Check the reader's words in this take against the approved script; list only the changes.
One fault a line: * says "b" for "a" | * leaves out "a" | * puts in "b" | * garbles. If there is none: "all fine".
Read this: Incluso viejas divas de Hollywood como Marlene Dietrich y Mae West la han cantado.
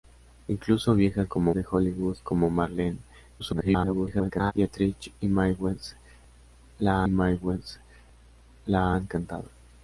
* says "como" for "divas"
* garbles
* puts in "Mae West la"